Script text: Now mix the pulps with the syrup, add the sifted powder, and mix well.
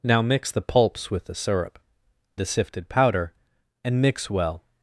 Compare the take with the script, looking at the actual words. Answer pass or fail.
fail